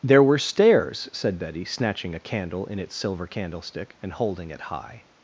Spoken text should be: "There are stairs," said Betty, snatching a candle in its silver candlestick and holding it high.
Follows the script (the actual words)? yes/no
no